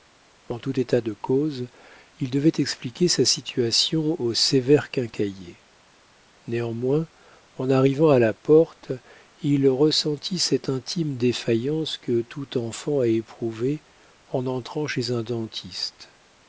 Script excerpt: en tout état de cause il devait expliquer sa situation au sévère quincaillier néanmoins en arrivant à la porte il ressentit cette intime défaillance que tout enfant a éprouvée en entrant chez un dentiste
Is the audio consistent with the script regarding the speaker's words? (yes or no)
yes